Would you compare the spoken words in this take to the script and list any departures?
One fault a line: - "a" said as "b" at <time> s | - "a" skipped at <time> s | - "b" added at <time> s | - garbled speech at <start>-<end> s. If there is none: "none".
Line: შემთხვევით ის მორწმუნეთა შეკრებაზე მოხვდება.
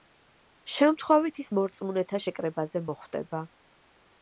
none